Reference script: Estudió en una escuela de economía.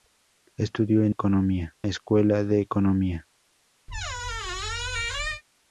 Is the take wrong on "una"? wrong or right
wrong